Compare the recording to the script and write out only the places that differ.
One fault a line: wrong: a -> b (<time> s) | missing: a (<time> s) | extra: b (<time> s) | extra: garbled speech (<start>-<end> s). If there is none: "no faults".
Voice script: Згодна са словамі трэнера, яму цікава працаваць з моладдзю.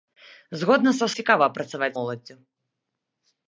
missing: словамі трэнера яму (1.1 s)
missing: з (2.0 s)